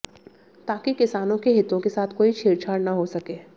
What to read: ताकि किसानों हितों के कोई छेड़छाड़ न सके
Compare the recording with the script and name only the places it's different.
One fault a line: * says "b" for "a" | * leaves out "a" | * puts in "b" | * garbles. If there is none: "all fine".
* puts in "के"
* puts in "साथ"
* puts in "हो"